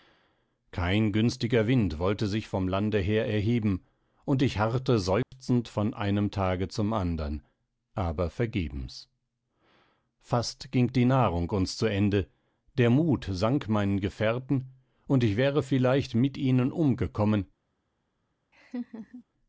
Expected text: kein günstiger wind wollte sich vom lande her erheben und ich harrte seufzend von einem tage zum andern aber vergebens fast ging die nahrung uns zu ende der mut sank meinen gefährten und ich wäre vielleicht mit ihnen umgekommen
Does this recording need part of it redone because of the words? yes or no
no